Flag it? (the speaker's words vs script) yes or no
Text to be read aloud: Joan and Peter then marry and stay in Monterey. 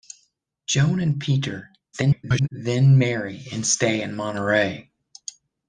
yes